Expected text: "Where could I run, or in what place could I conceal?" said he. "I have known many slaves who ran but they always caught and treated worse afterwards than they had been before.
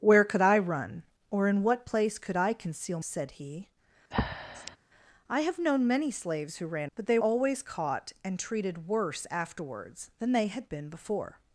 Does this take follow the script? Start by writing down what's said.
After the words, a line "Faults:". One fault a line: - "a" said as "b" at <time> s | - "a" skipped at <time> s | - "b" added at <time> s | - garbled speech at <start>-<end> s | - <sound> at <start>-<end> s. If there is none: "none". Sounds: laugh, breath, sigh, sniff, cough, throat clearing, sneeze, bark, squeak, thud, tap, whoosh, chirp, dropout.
"Where could I run, or in what place could I conceal?" said he. "I have known many slaves who ran but they always caught and treated worse afterwards than they had been before.
Faults:
- breath at 4.1-4.8 s